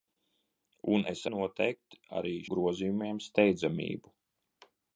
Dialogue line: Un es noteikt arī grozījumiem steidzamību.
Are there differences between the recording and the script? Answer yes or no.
no